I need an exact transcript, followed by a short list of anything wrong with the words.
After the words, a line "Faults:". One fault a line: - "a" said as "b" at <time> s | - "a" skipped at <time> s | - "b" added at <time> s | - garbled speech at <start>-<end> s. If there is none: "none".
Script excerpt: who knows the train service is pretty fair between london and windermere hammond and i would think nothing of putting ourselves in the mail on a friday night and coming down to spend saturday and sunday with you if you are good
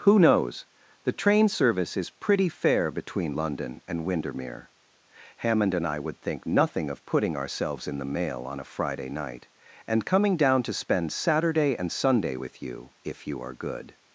who knows the train service is pretty fair between london and windermere hammond and i would think nothing of putting ourselves in the mail on a friday night and coming down to spend saturday and sunday with you if you are good
Faults:
none